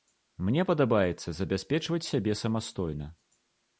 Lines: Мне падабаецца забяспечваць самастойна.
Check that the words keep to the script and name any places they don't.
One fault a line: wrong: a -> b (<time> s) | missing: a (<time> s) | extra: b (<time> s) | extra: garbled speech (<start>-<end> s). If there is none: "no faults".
extra: сябе (2.1 s)